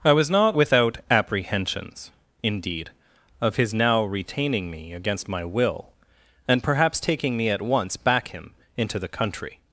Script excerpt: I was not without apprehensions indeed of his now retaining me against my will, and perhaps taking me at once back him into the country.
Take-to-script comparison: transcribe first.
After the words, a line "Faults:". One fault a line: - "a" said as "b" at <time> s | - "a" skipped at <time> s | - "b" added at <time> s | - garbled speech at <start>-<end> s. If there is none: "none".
I was not without apprehensions indeed of his now retaining me against my will, and perhaps taking me at once back him into the country.
Faults:
none